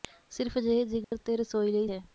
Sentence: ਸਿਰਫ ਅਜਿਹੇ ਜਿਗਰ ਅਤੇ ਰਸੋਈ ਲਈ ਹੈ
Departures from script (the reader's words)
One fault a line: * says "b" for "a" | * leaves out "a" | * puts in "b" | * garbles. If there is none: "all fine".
all fine